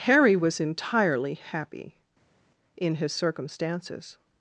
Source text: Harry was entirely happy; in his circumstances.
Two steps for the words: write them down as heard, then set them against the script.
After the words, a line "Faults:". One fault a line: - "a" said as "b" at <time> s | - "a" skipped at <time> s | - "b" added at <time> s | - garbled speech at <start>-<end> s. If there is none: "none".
Harry was entirely happy; in his circumstances.
Faults:
none